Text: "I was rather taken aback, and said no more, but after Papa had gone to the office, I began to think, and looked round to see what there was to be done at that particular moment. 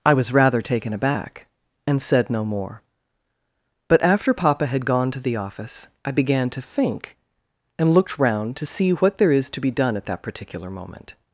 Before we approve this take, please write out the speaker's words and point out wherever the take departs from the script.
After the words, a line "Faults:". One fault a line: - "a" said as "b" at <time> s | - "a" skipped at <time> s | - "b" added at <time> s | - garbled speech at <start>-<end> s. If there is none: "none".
"I was rather taken aback, and said no more, but after Papa had gone to the office, I began to think, and looked round to see what there is to be done at that particular moment.
Faults:
- "was" said as "is" at 9.3 s